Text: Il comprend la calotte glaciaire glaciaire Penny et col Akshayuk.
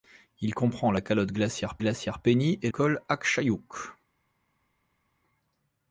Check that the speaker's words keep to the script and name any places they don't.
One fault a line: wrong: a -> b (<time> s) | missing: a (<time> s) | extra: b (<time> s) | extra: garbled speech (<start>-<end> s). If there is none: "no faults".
no faults